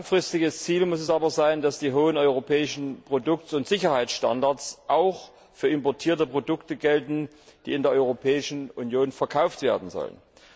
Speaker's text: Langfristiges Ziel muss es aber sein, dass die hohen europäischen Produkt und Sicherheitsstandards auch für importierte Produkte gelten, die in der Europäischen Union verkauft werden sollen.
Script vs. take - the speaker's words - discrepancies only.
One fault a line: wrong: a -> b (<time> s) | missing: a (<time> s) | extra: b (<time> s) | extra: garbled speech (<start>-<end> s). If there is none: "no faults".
no faults